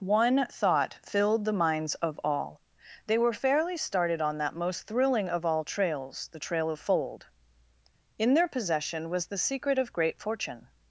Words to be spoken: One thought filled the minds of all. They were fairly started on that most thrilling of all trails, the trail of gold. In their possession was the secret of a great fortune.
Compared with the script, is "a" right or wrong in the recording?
wrong